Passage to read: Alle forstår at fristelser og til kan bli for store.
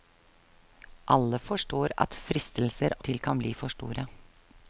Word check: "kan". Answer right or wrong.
right